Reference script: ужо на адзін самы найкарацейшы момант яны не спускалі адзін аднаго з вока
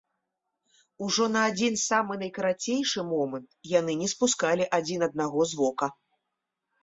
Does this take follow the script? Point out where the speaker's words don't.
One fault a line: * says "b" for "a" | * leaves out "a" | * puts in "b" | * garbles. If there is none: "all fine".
all fine